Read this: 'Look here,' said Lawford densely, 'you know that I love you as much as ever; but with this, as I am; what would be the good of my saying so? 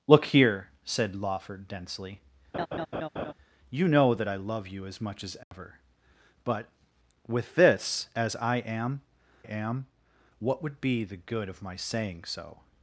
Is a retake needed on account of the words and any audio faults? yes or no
yes